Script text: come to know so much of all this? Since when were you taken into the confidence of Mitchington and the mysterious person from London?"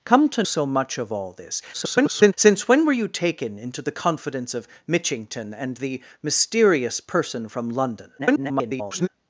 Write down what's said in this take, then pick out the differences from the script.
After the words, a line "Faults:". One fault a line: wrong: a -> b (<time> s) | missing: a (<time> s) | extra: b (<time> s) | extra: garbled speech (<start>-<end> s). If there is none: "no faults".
come to so much of all this? [garbled] Since when were you taken into the confidence of Mitchington and the mysterious person from London?" [garbled]
Faults:
missing: know (0.4 s)
extra: garbled speech (1.7-2.3 s)
extra: garbled speech (8.2-9.1 s)